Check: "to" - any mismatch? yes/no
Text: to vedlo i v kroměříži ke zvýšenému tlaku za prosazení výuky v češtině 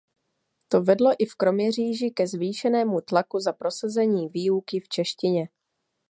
no